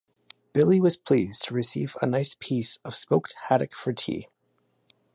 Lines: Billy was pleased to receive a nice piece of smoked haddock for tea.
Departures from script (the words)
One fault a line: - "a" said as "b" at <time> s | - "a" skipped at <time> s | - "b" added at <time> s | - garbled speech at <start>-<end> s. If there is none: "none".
none